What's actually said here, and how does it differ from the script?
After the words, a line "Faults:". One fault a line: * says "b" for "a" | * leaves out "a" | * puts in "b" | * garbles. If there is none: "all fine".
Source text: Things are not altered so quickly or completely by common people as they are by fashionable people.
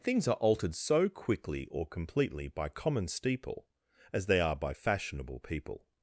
Things are altered so quickly or completely by common steeple as they are by fashionable people.
Faults:
* leaves out "not"
* says "steeple" for "people"